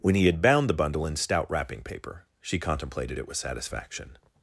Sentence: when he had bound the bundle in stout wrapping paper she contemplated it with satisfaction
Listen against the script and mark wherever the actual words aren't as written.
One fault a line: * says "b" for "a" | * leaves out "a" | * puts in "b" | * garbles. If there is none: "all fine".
all fine